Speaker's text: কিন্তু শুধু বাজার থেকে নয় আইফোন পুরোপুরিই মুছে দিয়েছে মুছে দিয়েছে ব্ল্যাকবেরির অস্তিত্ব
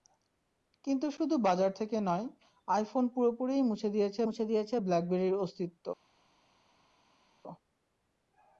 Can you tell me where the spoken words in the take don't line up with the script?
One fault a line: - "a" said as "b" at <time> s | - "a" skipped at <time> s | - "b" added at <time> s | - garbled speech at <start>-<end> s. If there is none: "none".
none